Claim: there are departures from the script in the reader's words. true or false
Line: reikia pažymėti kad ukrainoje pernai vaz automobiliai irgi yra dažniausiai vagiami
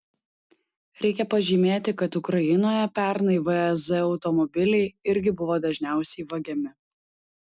true